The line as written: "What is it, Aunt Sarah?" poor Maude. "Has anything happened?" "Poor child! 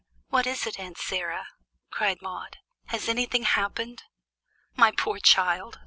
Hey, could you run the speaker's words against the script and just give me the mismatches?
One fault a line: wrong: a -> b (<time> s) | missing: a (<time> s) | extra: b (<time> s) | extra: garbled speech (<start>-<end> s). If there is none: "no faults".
wrong: poor -> cried (1.9 s)
extra: My (4.7 s)